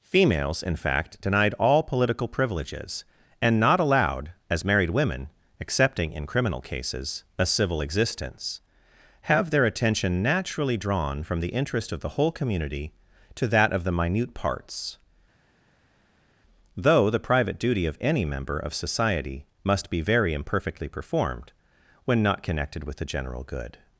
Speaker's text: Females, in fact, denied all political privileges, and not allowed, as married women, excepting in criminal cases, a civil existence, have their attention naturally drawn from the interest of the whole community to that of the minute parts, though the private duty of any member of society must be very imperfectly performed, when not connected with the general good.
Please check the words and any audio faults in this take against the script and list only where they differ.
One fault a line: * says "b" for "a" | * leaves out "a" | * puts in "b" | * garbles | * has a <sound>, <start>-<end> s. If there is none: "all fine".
all fine